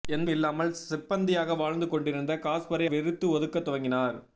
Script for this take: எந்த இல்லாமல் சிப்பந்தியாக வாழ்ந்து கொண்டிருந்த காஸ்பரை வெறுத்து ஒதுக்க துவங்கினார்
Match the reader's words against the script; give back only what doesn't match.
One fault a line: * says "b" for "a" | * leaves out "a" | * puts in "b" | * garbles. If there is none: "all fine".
all fine